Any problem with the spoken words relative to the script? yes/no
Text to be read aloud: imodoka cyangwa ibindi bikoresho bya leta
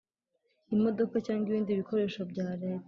no